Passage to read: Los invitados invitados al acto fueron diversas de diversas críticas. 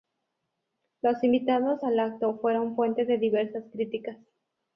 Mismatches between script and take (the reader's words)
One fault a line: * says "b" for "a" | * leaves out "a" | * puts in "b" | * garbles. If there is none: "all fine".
* leaves out "invitados"
* says "fuente" for "diversas"